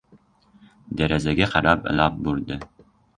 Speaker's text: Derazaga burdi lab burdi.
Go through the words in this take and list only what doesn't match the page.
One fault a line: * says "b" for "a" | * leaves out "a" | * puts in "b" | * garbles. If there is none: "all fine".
* says "qarab" for "burdi"